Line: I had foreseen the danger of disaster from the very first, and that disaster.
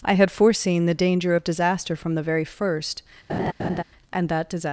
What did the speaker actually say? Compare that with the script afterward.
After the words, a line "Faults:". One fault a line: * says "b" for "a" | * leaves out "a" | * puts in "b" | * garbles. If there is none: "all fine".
I had foreseen the danger of disaster from the very first, and that disaster.
Faults:
all fine